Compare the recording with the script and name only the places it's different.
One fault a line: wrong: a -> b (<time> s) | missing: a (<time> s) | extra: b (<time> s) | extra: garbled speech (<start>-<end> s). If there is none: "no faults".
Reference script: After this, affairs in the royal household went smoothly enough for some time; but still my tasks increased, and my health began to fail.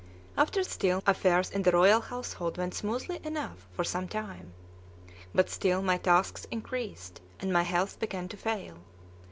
wrong: this -> still (0.7 s)